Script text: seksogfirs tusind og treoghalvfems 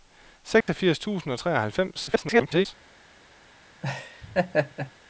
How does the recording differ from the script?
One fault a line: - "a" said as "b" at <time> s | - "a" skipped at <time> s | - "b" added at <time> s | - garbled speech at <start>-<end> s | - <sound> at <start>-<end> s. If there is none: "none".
- dropout at 0.6-0.7 s
- garbled speech at 2.1-2.7 s
- laugh at 3.8-4.9 s